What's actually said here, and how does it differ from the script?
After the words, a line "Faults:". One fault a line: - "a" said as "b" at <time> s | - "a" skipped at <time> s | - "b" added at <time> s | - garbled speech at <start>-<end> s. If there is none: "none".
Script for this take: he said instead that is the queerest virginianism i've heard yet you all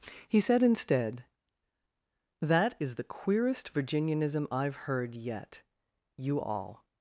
he said instead that is the queerest virginianism i've heard yet you all
Faults:
none